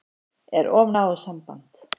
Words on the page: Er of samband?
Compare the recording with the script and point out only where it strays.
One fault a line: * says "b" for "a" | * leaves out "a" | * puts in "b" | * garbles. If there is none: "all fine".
* puts in "náið"